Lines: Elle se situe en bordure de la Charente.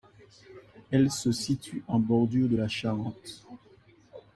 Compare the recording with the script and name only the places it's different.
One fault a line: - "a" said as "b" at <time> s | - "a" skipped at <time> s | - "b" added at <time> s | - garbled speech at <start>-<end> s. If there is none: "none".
none